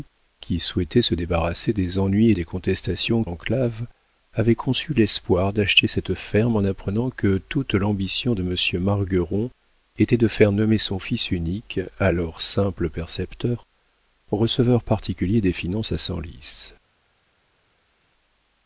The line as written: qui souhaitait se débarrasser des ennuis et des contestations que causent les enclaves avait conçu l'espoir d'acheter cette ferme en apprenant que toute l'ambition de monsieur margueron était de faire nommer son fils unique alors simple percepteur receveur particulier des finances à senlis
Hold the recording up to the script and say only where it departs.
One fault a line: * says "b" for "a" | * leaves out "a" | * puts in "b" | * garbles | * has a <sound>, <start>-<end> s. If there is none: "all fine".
* leaves out "que causent les"